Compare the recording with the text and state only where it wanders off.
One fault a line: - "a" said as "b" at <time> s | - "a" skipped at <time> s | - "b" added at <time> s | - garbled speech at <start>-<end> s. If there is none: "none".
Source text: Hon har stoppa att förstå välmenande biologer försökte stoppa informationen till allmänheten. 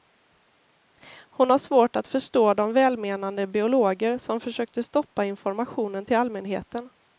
- "stoppa" said as "svårt" at 1.6 s
- "de" added at 2.5 s
- "som" added at 4.1 s